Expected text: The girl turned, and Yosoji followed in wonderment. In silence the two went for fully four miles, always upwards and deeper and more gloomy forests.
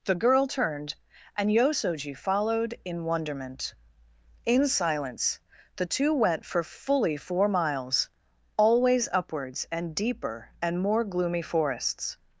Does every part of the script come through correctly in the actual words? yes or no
yes